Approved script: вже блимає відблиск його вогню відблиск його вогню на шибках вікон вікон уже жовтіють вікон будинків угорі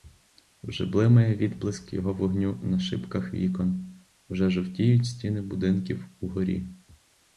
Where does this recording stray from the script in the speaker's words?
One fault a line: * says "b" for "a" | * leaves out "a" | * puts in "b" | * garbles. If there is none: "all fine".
* leaves out "відблиск його вогню"
* leaves out "вікон"
* says "стіни" for "вікон"